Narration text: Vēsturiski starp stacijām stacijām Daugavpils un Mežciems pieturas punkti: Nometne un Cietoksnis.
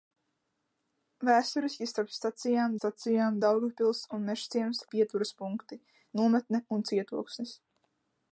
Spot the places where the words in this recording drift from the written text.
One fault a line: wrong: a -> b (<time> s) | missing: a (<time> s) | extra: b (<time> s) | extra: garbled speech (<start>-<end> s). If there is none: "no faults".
no faults